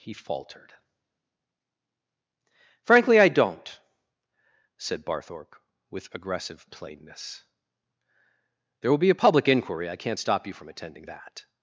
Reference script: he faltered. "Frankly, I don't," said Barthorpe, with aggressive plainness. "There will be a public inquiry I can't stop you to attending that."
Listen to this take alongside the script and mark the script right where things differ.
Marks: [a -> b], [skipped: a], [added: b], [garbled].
he faltered. "Frankly, I don't," said Barthorpe, with aggressive plainness. "There will be a public inquiry I can't stop you [to -> from] attending that."